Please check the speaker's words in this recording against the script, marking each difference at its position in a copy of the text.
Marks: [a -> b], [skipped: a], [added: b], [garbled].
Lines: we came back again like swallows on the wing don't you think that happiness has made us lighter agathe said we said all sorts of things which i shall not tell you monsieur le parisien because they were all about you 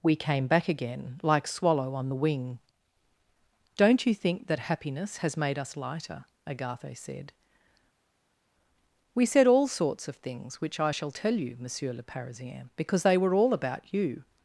we came back again like [swallows -> swallow] on the wing don't you think that happiness has made us lighter agathe said we said all sorts of things which i shall [skipped: not] tell you monsieur le parisien because they were all about you